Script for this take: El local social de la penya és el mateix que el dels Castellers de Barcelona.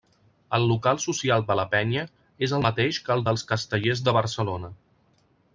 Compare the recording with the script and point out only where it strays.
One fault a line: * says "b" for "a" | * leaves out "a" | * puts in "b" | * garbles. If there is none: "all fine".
all fine